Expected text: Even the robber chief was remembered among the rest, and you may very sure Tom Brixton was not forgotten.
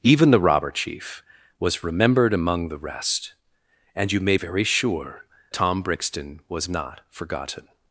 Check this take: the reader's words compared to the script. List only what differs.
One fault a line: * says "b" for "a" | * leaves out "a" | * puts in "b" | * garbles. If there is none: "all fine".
all fine